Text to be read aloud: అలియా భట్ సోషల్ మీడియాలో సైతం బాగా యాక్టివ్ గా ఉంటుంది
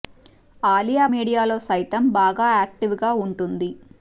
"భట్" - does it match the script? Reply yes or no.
no